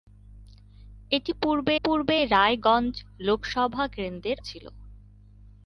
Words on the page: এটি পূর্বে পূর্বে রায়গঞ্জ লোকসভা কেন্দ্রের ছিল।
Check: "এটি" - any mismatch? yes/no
no